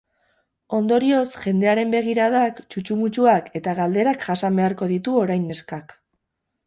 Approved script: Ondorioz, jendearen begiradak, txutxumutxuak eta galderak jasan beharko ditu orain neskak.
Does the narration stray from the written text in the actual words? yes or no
no